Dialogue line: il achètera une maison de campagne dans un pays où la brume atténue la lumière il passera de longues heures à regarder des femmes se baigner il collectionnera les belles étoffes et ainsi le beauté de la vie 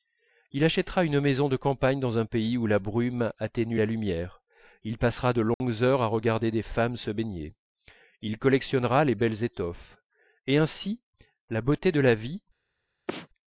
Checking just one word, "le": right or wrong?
wrong